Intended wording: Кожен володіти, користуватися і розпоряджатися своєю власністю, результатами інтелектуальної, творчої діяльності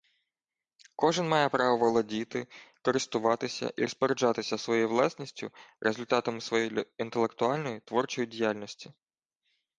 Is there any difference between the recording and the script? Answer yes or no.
yes